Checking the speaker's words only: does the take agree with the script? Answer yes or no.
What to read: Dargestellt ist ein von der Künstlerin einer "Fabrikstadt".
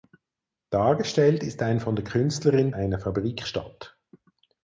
yes